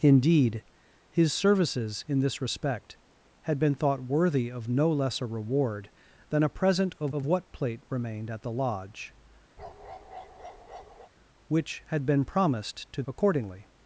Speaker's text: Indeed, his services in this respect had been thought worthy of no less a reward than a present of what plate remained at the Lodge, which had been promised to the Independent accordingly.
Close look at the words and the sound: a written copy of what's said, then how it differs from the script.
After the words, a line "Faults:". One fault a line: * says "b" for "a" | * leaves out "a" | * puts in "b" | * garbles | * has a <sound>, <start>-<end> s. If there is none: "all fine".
Indeed, his services in this respect had been thought worthy of no less a reward than a present of of what plate remained at the Lodge, which had been promised to accordingly.
Faults:
* puts in "of"
* has a bark, 9.6-11.1 s
* leaves out "the Independent"